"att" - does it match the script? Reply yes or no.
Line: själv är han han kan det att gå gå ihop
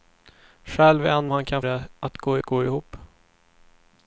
yes